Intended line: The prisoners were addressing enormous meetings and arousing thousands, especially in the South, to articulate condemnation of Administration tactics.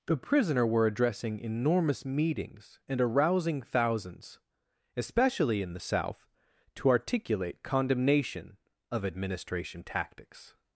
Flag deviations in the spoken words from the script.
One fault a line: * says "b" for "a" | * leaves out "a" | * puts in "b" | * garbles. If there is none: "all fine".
* says "prisoner" for "prisoners"